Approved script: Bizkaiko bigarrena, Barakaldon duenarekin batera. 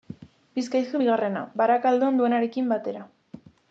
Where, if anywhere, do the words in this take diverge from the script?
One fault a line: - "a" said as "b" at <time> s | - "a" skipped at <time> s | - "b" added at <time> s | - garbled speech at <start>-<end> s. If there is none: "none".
none